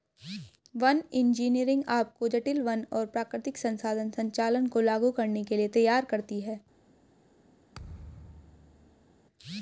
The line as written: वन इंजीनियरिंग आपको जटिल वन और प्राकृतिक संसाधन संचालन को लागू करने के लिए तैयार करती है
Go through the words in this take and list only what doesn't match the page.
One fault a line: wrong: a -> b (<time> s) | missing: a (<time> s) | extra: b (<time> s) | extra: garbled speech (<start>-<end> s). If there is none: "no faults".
no faults